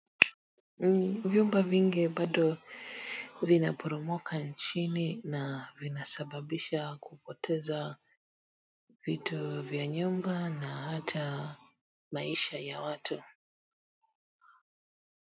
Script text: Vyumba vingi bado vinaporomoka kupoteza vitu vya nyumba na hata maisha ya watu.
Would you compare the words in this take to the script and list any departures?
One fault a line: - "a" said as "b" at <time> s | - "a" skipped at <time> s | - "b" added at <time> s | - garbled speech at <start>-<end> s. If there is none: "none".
- "nchini na vinasababisha" added at 4.4 s